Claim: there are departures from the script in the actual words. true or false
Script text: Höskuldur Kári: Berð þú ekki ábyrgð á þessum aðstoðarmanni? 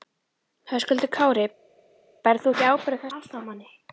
true